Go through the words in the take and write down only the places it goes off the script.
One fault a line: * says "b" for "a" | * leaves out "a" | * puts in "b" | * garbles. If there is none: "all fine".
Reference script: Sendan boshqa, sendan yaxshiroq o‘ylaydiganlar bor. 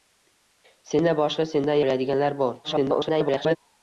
* leaves out "yaxshiroq"
* garbles